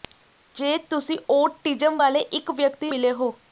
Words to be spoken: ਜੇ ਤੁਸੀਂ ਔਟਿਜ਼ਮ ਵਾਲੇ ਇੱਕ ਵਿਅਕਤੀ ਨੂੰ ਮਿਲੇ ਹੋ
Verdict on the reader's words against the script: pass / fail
fail